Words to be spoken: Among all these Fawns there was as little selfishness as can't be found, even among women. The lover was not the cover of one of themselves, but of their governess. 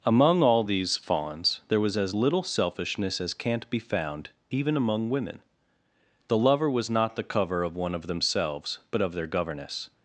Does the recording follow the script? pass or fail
pass